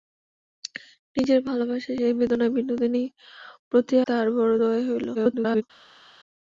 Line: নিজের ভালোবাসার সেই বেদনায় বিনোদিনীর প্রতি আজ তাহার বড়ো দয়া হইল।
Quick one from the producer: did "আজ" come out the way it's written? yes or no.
no